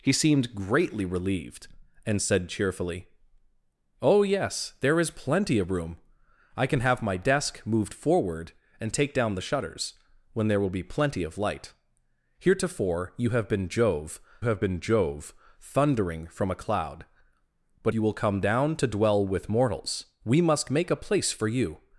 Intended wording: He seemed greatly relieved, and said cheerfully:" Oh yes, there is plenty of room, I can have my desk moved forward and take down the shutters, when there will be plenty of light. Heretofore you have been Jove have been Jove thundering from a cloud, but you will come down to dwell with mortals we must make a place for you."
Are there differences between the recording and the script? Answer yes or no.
no